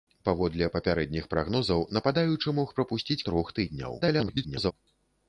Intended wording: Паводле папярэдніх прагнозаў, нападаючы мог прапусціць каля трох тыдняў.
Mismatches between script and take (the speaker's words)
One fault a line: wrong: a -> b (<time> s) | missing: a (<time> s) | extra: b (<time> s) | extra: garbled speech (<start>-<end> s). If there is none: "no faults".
missing: каля (3.2 s)
extra: garbled speech (4.0-4.7 s)